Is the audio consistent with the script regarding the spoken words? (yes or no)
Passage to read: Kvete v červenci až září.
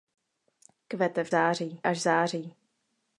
no